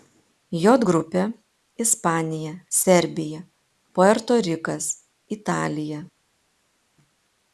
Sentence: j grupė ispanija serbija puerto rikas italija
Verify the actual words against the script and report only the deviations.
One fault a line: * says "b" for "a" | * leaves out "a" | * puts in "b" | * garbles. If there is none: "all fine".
all fine